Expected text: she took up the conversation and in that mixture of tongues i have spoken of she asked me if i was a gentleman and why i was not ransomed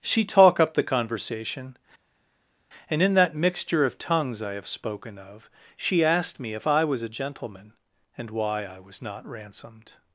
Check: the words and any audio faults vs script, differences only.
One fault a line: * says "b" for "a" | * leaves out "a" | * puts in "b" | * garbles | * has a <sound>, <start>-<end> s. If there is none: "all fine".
* says "talk" for "took"